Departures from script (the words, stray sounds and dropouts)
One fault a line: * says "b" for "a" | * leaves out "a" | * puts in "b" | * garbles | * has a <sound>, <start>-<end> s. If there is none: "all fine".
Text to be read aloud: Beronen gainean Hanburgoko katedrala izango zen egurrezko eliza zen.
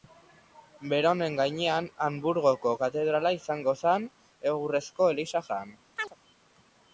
* has a chirp, 6.0-6.2 s